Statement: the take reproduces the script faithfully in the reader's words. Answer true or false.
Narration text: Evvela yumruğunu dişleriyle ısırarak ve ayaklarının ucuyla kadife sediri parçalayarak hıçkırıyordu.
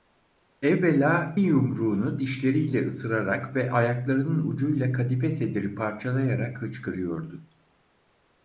true